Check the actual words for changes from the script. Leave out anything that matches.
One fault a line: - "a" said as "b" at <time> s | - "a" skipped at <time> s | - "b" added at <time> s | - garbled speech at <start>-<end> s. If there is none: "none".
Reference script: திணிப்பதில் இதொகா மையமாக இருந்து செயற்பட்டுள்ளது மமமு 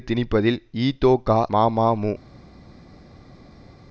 - "மையமாக இருந்து செயற்பட்டுள்ளது" skipped at 1.4 s